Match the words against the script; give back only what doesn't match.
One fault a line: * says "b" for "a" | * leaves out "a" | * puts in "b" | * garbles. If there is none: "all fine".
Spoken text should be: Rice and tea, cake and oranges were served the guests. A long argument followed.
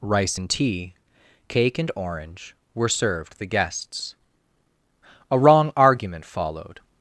* says "orange" for "oranges"
* says "wrong" for "long"